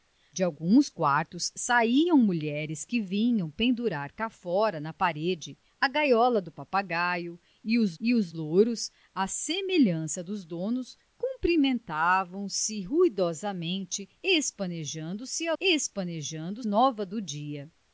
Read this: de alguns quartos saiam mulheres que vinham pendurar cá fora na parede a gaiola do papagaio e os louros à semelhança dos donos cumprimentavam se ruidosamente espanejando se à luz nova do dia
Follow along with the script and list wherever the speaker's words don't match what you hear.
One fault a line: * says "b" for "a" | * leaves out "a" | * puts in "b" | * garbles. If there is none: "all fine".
* puts in "e os"
* says "espanejando" for "luz"